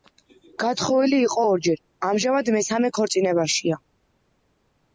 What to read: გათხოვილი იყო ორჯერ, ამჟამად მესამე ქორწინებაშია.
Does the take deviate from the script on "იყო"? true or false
false